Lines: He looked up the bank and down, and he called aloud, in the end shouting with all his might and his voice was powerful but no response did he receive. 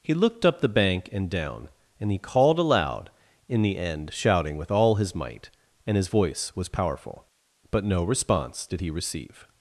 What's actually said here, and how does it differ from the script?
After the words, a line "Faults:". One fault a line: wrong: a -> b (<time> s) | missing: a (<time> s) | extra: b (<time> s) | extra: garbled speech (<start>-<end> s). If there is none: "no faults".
He looked up the bank and down, and he called aloud, in the end shouting with all his might and his voice was powerful but no response did he receive.
Faults:
no faults